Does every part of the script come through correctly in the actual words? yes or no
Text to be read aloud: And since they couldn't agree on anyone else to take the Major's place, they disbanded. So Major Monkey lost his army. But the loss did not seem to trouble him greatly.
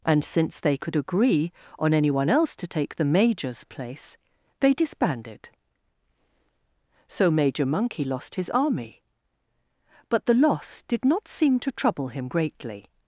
no